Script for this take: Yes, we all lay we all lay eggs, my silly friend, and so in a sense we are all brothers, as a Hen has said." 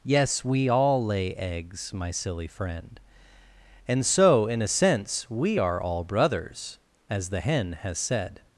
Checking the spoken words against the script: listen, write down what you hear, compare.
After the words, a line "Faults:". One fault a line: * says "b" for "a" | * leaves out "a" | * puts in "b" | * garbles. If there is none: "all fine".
Yes, we all lay eggs, my silly friend, and so in a sense we are all brothers, as the Hen has said."
Faults:
* leaves out "we all lay"
* says "the" for "a"